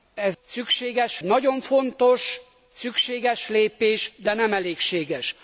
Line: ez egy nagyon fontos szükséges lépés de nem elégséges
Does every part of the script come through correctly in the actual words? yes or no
no